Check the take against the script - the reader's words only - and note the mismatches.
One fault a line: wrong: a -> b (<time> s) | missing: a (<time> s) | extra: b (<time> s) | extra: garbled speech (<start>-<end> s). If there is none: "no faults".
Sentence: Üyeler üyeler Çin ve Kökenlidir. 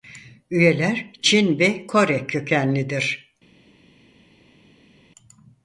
missing: üyeler (1.1 s)
extra: Kore (1.8 s)